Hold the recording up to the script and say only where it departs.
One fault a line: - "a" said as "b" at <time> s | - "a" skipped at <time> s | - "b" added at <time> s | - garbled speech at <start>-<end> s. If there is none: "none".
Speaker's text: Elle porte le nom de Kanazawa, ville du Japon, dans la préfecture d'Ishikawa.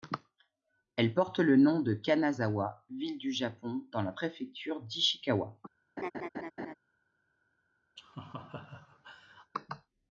none